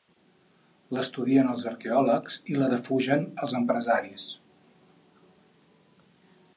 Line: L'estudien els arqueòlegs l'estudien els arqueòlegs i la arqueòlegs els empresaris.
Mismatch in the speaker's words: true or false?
true